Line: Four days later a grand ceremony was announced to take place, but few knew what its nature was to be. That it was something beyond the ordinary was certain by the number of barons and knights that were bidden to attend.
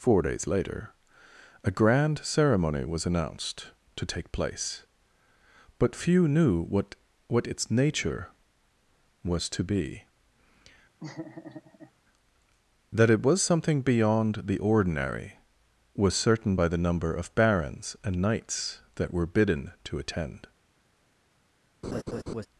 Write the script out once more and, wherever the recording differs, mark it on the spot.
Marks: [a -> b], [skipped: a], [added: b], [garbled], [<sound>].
Four days later a grand ceremony was announced to take place, but few knew what [added: what] its nature was to be. [laugh] That it was something beyond the ordinary was certain by the number of barons and knights that were bidden to attend. [laugh]